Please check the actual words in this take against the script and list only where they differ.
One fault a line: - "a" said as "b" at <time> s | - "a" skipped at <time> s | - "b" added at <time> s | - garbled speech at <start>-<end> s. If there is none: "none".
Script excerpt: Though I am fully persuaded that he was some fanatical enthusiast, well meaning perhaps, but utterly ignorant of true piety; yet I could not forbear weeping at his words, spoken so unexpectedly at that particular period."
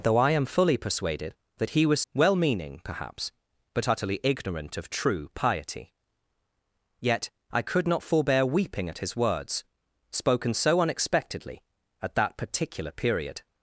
- "some fanatical enthusiast" skipped at 2.0 s